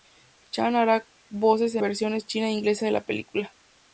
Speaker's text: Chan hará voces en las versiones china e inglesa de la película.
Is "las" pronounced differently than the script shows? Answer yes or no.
yes